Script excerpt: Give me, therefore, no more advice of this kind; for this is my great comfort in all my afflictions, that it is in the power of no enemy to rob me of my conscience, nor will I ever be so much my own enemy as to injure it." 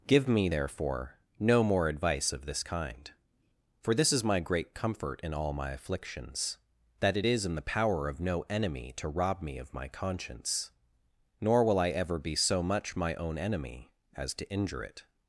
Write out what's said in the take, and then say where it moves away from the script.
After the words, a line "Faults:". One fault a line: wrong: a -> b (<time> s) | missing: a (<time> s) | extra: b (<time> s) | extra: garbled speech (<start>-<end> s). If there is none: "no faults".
Give me, therefore, no more advice of this kind; for this is my great comfort in all my afflictions, that it is in the power of no enemy to rob me of my conscience, nor will I ever be so much my own enemy as to injure it."
Faults:
no faults